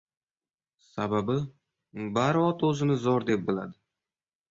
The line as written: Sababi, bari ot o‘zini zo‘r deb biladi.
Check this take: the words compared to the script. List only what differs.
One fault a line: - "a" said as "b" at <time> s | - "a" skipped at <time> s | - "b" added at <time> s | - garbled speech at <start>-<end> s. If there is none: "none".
none